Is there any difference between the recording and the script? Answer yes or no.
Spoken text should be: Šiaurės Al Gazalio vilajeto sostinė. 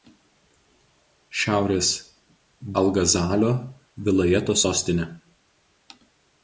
no